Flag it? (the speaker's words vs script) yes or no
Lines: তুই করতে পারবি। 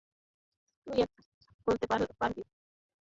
no